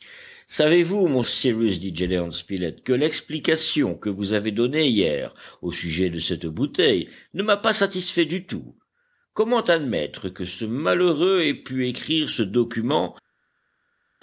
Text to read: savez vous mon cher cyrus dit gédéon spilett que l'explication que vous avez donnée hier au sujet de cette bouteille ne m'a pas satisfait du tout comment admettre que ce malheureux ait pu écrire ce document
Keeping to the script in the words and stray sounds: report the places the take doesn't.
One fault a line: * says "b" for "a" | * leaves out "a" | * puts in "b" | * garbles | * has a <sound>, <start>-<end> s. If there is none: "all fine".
* leaves out "cher"